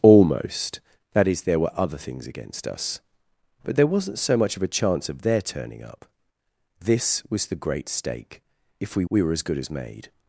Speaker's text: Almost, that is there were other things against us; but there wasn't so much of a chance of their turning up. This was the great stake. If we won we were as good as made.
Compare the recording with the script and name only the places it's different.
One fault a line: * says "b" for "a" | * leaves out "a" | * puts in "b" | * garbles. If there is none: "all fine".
* leaves out "won"